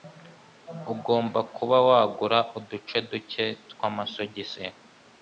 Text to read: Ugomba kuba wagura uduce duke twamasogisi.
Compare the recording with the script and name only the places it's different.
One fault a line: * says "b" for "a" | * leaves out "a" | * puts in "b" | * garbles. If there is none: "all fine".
all fine